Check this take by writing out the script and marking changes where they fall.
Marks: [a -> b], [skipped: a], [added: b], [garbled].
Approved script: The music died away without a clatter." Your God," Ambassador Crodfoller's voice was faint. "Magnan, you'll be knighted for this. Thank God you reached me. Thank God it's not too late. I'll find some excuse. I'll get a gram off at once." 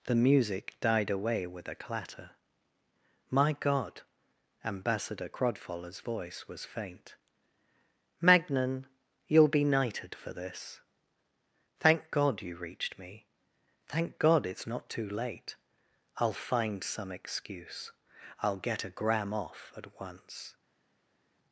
The music died away [without -> with] a clatter." [Your -> My] God," Ambassador Crodfoller's voice was faint. "Magnan, you'll be knighted for this. Thank God you reached me. Thank God it's not too late. I'll find some excuse. I'll get a gram off at once."